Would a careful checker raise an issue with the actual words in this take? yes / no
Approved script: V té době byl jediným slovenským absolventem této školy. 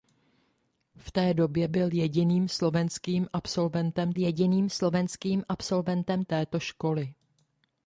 yes